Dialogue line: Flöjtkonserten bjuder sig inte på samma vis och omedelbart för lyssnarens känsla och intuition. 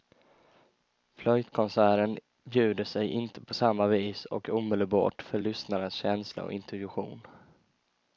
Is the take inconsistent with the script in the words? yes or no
no